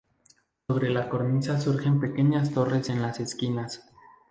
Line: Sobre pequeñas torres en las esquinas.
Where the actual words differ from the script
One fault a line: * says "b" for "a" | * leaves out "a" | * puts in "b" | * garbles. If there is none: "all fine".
* puts in "la cornisa surgen"